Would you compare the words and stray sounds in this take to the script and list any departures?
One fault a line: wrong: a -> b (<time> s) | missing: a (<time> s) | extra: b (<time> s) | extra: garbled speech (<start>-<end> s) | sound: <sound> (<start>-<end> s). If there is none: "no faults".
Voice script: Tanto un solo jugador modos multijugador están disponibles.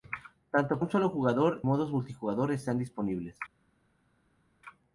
no faults